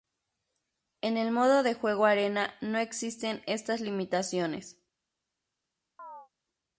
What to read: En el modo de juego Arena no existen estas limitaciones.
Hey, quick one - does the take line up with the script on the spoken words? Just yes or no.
yes